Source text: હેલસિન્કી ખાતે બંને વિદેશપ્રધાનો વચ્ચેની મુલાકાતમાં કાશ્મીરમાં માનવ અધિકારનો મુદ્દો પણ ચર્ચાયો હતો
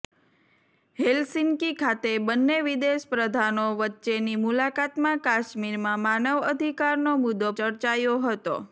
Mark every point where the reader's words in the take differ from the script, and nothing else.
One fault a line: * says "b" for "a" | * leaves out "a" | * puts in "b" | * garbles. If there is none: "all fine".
* leaves out "પણ"